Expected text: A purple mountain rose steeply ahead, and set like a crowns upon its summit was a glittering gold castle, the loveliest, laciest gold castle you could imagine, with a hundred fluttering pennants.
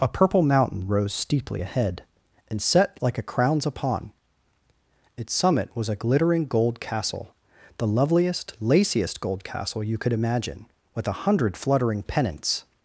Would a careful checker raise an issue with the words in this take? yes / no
no